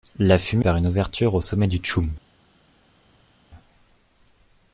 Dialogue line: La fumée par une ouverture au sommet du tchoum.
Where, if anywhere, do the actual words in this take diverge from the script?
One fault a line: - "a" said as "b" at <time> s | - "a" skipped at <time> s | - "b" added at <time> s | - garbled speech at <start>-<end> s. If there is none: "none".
none